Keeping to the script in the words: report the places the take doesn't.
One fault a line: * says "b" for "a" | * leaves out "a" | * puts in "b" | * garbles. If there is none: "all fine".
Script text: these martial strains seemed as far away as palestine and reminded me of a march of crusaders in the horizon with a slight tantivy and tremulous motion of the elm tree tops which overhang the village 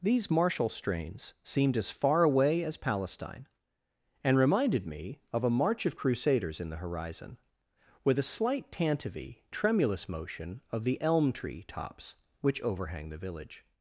* leaves out "and"